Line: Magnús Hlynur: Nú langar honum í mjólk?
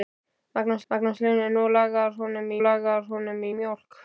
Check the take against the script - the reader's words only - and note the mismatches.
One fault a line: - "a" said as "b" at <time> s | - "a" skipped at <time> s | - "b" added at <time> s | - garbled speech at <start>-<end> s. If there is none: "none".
- "magnús" added at 0.9 s
- "langar honum" added at 2.7 s